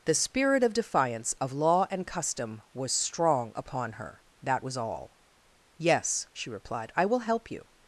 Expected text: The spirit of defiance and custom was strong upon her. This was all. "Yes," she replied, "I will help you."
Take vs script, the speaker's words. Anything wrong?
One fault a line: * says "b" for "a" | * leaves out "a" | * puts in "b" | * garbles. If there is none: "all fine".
* puts in "of law"
* says "That" for "This"